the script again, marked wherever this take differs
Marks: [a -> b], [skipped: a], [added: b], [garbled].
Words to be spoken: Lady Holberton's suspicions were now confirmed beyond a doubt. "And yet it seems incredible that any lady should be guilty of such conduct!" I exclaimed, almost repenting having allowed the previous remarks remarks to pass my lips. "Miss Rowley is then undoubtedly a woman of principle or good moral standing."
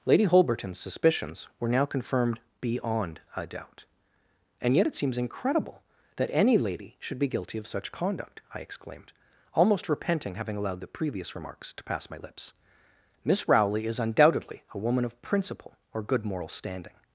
Lady Holberton's suspicions were now confirmed beyond a doubt. "And yet it seems incredible that any lady should be guilty of such conduct!" I exclaimed, almost repenting having allowed the previous remarks [skipped: remarks] to pass my lips. "Miss Rowley is [skipped: then] undoubtedly a woman of principle or good moral standing."